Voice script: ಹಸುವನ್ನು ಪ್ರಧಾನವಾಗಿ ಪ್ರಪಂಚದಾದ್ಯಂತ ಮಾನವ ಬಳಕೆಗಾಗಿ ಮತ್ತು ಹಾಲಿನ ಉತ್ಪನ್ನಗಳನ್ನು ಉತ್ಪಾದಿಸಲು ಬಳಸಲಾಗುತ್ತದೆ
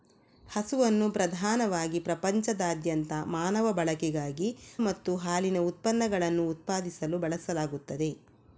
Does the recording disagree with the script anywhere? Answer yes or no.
no